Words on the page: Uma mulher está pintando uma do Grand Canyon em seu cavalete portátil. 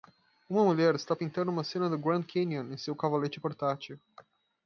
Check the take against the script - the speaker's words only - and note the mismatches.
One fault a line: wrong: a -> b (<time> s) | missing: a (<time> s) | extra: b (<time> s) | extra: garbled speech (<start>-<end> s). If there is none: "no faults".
extra: cena (1.6 s)